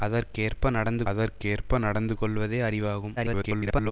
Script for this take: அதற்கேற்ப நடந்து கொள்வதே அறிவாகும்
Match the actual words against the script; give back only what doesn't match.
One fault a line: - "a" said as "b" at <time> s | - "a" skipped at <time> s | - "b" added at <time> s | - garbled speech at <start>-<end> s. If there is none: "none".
- "அதற்கேற்ப நடந்து" added at 1.1 s
- garbled speech at 3.2-3.9 s